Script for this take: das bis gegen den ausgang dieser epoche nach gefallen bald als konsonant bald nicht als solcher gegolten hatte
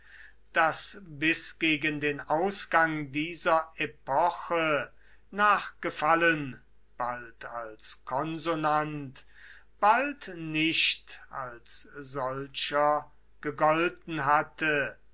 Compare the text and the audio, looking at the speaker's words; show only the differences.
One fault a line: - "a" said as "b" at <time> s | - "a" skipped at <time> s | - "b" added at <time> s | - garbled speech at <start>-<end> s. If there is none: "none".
none